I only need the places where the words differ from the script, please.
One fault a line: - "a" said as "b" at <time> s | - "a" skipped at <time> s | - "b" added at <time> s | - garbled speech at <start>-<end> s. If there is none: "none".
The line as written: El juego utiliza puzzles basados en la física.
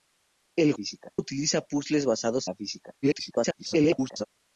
- "juego" said as "física" at 0.7 s
- "en" skipped at 2.5 s
- garbled speech at 3.0-4.3 s